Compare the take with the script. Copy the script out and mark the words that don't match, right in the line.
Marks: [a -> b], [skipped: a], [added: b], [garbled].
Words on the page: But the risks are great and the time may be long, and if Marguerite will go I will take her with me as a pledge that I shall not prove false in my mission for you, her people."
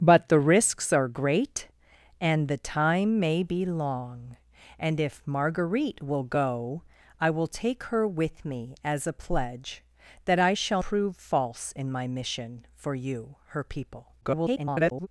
But the risks are great and the time may be long, and if Marguerite will go I will take her with me as a pledge that I shall [skipped: not] prove false in my mission for you, her people." [garbled]